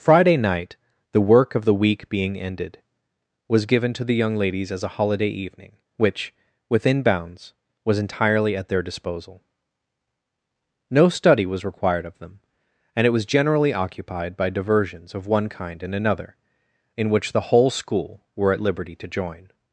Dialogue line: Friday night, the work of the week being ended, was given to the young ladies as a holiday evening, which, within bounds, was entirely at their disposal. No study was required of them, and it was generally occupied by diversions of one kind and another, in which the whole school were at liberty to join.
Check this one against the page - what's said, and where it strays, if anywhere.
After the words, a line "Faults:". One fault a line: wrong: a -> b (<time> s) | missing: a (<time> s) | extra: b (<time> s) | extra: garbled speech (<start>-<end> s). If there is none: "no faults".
Friday night, the work of the week being ended, was given to the young ladies as a holiday evening, which, within bounds, was entirely at their disposal. No study was required of them, and it was generally occupied by diversions of one kind and another, in which the whole school were at liberty to join.
Faults:
no faults